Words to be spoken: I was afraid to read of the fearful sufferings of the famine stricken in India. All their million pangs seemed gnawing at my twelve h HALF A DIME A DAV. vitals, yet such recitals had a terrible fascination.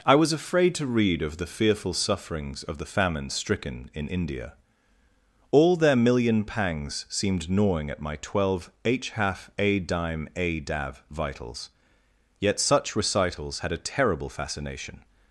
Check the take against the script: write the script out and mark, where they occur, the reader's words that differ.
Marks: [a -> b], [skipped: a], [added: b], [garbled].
I was afraid to read of the fearful sufferings of the famine stricken in India. All their million pangs seemed gnawing at my twelve h HALF A DIME A DAV. vitals, yet such recitals had a terrible fascination.